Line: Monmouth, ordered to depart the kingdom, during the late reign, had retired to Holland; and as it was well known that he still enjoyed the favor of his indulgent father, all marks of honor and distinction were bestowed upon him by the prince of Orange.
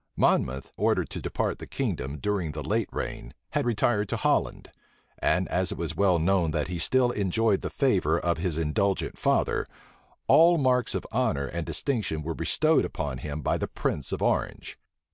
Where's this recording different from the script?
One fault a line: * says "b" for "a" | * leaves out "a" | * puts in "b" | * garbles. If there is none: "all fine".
all fine